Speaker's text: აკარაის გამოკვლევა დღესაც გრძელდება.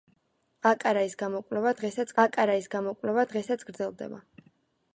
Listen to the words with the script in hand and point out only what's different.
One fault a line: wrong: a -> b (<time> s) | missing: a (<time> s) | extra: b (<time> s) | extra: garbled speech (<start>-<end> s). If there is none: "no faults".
extra: აკარაის გამოკვლევა დღესაც (2.2 s)